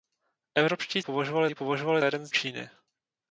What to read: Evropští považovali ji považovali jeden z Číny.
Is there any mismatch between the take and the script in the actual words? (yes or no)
no